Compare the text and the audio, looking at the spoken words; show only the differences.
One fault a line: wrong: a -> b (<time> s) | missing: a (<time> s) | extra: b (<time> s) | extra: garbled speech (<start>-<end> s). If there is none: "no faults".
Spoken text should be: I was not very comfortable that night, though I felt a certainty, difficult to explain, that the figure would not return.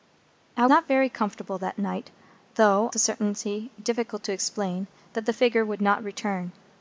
missing: was (0.7 s)
missing: I felt (2.9 s)